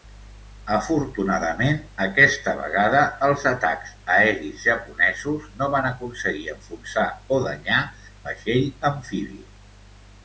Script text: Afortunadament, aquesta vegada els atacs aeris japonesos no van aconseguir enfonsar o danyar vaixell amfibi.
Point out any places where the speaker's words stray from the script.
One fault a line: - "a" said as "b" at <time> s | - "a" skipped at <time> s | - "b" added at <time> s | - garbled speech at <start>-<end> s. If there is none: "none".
none